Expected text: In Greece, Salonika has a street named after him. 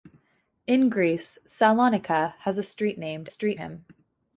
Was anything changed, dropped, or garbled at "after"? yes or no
yes